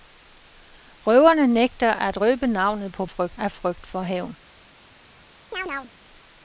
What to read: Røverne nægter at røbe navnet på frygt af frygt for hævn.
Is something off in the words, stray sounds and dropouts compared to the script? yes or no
yes